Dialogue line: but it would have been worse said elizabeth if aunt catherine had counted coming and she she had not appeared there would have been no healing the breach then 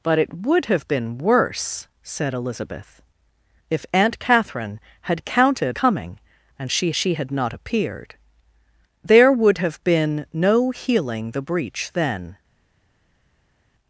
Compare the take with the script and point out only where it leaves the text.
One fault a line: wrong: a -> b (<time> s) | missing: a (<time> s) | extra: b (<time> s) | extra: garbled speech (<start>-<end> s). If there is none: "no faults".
no faults